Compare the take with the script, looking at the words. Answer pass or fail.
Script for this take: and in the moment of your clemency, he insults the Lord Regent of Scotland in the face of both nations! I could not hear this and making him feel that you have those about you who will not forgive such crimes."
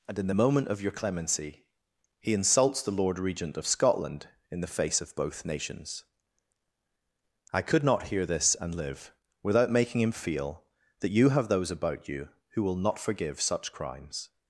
fail